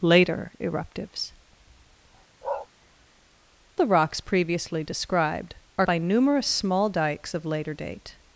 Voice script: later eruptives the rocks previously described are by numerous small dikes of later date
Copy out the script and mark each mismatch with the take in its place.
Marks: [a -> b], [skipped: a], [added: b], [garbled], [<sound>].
later eruptives [bark] the rocks previously described are by numerous small dikes of later date